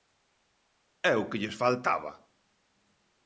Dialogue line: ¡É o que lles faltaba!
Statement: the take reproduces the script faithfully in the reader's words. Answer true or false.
true